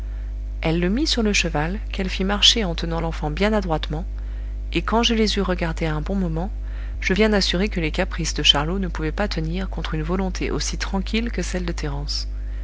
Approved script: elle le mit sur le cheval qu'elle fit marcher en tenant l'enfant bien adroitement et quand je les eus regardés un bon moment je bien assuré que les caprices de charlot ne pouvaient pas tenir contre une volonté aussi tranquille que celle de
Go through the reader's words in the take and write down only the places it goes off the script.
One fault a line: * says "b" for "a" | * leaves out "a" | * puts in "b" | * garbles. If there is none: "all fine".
all fine